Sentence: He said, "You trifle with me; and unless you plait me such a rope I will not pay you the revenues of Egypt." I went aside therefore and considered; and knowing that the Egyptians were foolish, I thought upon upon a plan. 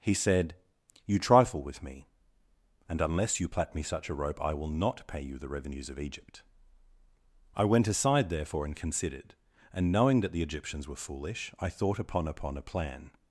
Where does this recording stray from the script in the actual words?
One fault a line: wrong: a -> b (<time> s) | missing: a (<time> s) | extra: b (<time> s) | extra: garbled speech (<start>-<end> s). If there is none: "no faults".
no faults